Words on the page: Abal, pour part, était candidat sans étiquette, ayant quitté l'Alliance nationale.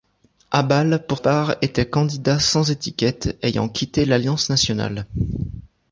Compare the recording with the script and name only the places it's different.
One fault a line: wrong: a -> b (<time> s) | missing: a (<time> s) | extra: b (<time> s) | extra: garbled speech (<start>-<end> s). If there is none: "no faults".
no faults